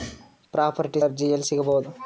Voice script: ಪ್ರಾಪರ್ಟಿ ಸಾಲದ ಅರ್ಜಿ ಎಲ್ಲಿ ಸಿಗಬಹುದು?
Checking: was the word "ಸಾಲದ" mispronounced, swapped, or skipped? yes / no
yes